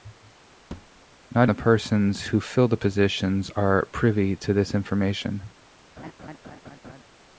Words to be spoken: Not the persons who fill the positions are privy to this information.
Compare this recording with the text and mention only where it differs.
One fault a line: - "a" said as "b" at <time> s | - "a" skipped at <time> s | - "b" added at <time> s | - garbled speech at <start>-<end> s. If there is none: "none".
none